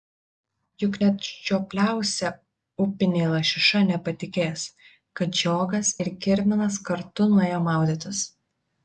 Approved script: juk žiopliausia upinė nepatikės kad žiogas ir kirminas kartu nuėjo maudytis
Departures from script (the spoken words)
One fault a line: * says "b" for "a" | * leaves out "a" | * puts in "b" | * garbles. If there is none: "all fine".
* puts in "net"
* puts in "lašiša"